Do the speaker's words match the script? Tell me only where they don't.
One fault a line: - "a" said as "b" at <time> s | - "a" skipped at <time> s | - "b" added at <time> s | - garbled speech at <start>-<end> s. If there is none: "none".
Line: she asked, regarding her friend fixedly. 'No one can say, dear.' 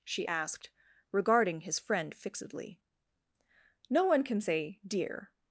- "her" said as "his" at 1.6 s